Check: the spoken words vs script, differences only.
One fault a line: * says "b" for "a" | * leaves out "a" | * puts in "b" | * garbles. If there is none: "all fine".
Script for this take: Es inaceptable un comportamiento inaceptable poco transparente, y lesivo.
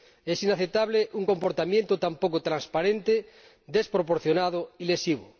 * says "tan" for "inaceptable"
* puts in "desproporcionado"